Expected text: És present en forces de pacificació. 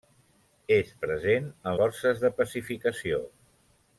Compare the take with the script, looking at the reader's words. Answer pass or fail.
pass